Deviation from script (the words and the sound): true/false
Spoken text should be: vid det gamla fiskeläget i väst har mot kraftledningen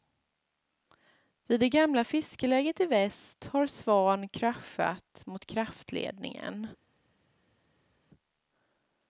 true